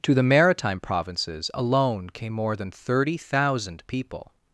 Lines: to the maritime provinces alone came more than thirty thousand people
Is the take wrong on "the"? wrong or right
right